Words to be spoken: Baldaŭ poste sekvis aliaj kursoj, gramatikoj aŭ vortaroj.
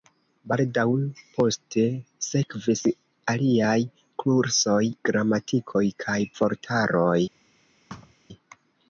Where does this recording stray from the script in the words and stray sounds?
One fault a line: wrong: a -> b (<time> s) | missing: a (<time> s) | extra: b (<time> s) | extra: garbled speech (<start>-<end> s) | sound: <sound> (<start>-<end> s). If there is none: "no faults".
wrong: aŭ -> kaj (6.1 s)
sound: thud (7.9-8.1 s)